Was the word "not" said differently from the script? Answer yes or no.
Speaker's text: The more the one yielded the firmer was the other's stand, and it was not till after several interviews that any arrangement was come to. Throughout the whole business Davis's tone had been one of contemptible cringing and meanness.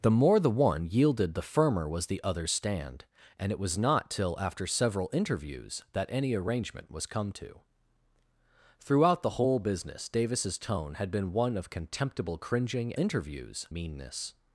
no